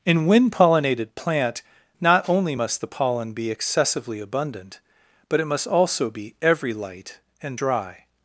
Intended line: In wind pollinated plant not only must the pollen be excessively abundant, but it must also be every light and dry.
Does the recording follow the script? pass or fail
pass